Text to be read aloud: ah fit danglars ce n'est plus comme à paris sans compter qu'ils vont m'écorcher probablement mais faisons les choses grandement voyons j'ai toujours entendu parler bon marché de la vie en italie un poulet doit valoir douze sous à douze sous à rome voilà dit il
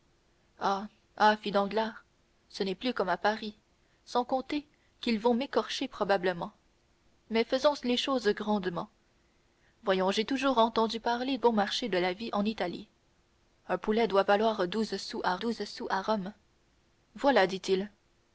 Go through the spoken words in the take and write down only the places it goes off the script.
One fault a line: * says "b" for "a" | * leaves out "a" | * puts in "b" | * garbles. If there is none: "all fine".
all fine